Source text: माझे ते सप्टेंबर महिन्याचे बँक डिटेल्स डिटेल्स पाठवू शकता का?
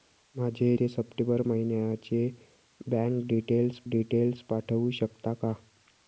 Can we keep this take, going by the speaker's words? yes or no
yes